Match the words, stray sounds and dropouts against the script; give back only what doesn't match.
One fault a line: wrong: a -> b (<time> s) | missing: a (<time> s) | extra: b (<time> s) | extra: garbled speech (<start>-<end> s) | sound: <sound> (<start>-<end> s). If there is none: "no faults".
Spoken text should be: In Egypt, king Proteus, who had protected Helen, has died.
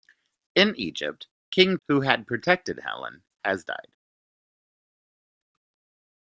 missing: Proteus (1.8 s)